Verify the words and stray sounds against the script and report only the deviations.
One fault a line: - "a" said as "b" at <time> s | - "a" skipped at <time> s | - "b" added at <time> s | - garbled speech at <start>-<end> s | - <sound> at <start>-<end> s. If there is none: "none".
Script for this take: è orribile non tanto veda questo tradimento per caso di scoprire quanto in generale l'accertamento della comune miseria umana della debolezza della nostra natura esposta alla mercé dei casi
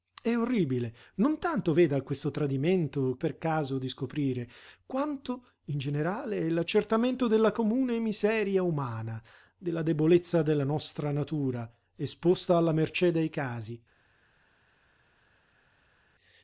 none